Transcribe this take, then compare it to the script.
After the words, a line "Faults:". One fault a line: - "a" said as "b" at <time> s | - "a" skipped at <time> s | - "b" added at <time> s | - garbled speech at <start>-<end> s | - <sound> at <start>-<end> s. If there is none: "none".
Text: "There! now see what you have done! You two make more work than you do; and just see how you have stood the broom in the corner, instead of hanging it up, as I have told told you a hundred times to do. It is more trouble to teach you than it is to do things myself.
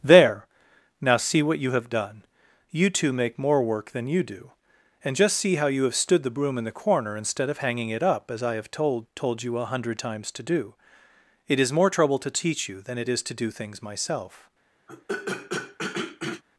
"There! now see what you have done! You two make more work than you do; and just see how you have stood the broom in the corner, instead of hanging it up, as I have told told you a hundred times to do. It is more trouble to teach you than it is to do things myself.
Faults:
- throat clearing at 14.9-16.4 s